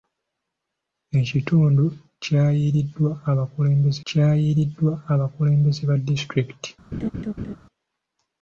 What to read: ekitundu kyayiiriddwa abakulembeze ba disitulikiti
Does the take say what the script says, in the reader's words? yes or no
no